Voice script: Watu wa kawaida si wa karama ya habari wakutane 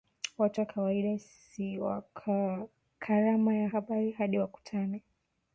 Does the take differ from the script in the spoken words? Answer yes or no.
yes